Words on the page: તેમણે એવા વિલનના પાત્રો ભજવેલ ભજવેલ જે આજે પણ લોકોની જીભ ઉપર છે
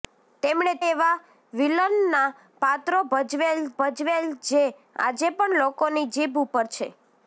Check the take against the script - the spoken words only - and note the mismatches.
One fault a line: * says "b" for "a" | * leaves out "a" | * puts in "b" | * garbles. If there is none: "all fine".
all fine